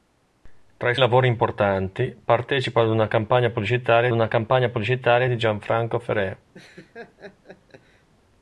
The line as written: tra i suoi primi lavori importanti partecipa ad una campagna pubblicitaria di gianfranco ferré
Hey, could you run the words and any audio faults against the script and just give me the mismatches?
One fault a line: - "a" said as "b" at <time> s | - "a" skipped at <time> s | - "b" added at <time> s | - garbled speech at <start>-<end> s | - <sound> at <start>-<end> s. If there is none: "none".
- "suoi primi" skipped at 0.9 s
- "una campagna pubblicitaria" added at 4.1 s
- laugh at 6.5-8.1 s